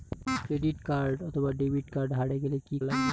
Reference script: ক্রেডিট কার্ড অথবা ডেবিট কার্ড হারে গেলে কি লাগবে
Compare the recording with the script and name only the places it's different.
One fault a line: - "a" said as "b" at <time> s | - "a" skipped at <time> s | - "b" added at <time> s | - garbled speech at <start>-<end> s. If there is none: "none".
none